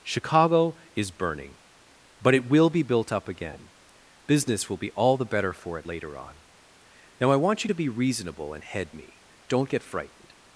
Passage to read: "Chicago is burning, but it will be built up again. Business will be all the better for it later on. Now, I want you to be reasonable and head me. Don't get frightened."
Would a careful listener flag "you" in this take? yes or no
no